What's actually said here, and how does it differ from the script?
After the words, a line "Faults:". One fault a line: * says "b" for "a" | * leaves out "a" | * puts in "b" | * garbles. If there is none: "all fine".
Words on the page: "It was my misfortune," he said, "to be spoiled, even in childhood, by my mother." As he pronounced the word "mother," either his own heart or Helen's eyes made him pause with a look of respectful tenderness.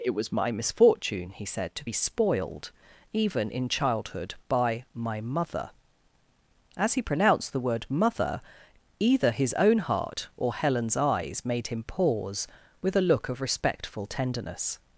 "It was my misfortune," he said, "to be spoiled, even in childhood, by my mother." As he pronounced the word "mother," either his own heart or Helen's eyes made him pause with a look of respectful tenderness.
Faults:
all fine